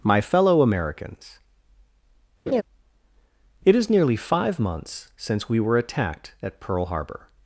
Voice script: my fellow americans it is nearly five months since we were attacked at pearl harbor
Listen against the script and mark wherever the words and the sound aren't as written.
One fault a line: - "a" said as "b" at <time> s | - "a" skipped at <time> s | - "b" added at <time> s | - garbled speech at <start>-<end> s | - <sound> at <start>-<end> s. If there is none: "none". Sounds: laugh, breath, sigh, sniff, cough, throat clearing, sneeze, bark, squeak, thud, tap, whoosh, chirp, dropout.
- laugh at 2.5-2.6 s